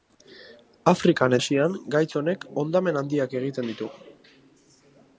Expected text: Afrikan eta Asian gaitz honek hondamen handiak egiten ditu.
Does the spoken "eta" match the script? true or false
false